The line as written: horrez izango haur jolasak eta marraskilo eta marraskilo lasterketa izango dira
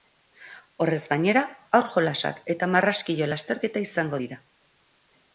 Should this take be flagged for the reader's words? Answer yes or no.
yes